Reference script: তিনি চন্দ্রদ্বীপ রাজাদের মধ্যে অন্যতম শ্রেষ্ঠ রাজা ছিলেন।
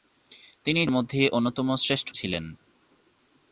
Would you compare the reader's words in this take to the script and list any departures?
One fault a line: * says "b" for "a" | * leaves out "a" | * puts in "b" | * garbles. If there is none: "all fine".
* leaves out "চন্দ্রদ্বীপ রাজাদের"
* leaves out "রাজা"